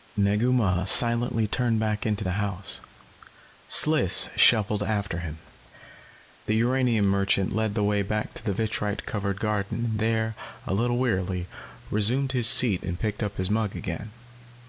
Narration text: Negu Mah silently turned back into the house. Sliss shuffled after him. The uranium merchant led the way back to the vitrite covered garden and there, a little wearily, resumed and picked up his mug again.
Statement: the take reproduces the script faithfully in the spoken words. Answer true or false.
false